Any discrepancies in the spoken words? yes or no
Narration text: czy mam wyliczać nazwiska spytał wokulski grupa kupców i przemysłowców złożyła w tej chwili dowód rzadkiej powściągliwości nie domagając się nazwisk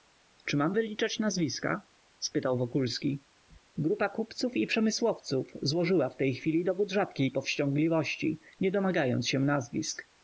no